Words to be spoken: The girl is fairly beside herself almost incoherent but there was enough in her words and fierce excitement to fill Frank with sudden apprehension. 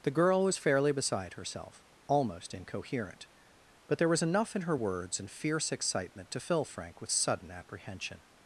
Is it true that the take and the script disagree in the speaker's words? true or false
true